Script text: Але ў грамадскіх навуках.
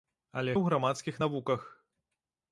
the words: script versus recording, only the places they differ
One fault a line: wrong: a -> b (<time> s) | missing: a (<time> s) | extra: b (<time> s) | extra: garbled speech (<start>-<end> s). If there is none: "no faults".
no faults